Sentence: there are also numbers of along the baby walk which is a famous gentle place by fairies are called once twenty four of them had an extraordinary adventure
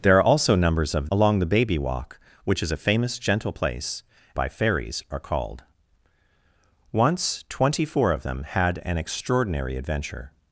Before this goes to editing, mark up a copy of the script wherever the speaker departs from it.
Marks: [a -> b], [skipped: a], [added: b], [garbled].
there are also numbers of along the baby walk which is a famous gentle place by fairies are called once twenty four of them had an extraordinary adventure